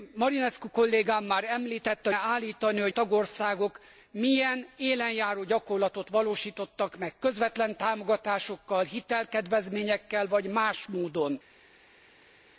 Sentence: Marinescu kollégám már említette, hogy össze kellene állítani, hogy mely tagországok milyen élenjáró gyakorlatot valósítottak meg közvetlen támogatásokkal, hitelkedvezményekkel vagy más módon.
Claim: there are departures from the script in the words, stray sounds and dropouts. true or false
true